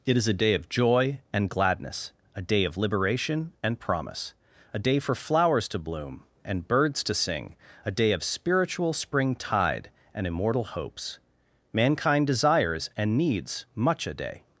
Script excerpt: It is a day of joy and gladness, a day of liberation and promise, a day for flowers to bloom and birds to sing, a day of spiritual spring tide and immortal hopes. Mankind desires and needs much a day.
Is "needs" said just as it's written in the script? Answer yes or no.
yes